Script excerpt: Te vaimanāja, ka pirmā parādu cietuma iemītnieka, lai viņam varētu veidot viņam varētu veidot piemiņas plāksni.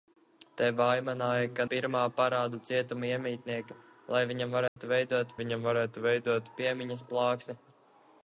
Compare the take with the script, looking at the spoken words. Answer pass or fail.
pass